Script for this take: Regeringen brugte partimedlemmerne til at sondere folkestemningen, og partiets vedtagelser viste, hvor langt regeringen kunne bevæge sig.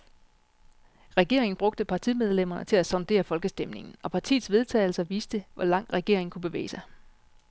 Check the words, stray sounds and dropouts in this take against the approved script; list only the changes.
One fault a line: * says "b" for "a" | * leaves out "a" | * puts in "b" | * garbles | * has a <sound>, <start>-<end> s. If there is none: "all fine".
all fine